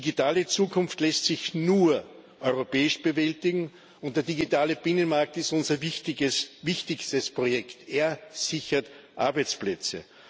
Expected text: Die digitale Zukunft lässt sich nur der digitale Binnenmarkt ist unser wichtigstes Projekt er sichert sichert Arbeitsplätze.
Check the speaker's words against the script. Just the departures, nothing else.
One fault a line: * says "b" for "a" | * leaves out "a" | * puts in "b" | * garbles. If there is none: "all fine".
* puts in "europäisch bewältigen und"
* leaves out "sichert"